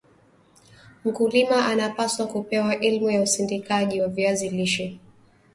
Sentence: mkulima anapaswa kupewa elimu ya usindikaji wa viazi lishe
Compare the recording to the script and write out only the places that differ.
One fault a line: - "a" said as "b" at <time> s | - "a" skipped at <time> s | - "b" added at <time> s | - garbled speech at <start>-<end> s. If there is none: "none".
none